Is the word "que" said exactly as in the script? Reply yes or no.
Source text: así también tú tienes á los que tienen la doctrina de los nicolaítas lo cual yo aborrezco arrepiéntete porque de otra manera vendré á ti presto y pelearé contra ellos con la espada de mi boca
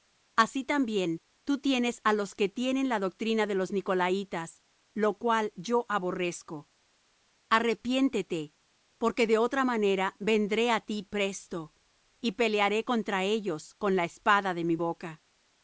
yes